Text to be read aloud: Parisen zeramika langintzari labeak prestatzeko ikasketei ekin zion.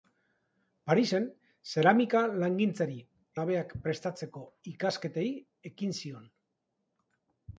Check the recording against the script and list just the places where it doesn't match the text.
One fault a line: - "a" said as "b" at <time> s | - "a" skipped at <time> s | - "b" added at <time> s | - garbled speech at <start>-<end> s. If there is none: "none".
none